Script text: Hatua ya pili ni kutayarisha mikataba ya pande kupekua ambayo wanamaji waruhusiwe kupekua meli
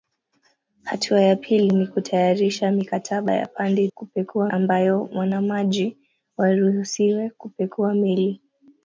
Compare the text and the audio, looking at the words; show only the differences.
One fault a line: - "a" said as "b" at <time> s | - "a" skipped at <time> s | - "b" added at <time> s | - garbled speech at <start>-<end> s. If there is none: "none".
none